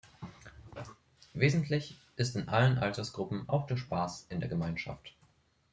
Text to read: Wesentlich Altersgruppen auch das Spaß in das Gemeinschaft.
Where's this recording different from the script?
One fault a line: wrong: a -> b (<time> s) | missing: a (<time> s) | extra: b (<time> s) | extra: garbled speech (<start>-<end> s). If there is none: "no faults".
extra: ist in allen (2.1 s)
wrong: das -> der (3.7 s)
wrong: das -> der (4.4 s)